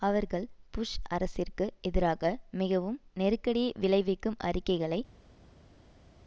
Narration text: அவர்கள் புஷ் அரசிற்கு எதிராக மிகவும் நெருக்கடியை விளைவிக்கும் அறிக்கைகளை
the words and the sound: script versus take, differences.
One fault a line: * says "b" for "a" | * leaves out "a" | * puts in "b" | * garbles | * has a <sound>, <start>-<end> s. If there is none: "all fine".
all fine